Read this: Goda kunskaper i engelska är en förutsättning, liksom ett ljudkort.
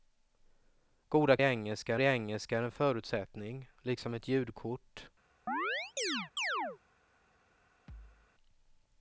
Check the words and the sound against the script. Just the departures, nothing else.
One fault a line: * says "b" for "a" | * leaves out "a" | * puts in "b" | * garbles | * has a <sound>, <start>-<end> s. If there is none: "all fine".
* says "engelska" for "kunskaper"
* has a chirp, 5.5-6.8 s
* has a thud, 7.9-8.3 s